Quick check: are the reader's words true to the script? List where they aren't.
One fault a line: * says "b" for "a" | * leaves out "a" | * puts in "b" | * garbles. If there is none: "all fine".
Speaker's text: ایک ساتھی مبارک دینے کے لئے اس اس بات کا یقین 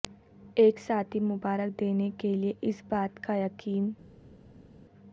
* leaves out "اس"